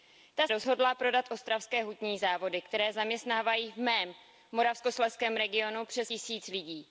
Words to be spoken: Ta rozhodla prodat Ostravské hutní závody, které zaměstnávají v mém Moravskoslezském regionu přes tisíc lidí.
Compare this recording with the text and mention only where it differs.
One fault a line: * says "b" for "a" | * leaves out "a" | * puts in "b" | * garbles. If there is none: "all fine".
all fine